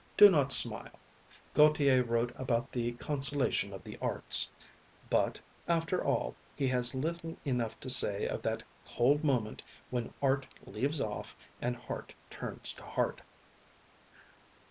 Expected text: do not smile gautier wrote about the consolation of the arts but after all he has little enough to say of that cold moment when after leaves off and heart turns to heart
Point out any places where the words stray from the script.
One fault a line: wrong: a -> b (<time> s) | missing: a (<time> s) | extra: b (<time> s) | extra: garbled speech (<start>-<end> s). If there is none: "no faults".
wrong: after -> art (10.2 s)